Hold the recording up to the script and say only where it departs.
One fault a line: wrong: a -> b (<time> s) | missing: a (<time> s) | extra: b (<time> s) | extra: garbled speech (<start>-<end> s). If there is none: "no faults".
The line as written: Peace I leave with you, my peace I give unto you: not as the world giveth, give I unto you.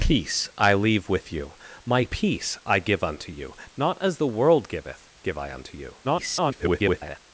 extra: garbled speech (6.0-7.2 s)